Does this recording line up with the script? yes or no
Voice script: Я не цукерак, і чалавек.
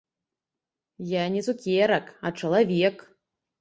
no